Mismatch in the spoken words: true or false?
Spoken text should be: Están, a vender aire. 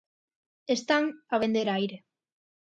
false